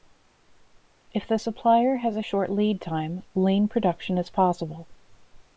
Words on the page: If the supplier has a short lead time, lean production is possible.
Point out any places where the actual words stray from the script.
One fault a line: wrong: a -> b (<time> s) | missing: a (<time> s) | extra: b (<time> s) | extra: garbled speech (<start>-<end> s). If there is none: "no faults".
no faults